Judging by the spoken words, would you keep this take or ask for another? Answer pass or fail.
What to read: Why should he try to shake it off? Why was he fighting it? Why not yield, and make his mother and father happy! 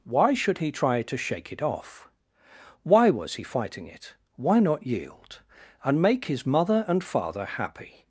pass